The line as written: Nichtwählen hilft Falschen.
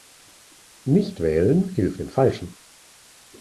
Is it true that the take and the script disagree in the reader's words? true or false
true